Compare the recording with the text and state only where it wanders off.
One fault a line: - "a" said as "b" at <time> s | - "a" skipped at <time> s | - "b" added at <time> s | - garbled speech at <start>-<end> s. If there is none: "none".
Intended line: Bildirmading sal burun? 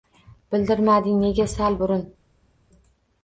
- "nega" added at 1.2 s